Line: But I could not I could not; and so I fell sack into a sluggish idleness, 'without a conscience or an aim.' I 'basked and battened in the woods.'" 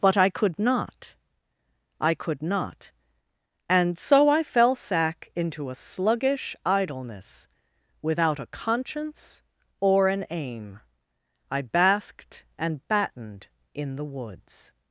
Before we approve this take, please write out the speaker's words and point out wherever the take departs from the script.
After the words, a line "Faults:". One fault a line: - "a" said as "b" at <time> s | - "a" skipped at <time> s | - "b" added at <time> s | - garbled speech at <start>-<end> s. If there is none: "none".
But I could not I could not; and so I fell sack into a sluggish idleness, 'without a conscience or an aim.' I 'basked and battened in the woods.'"
Faults:
none